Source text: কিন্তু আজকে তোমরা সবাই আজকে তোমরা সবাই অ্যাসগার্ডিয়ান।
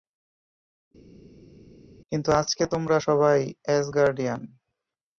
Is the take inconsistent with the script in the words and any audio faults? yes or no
yes